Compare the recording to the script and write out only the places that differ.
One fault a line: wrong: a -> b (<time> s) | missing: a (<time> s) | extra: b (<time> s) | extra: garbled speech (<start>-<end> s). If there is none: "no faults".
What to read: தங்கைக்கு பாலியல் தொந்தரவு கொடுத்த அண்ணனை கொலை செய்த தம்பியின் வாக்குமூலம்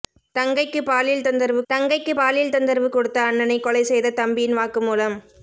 extra: தங்கைக்கு பாலியல் தொந்தரவு (1.7 s)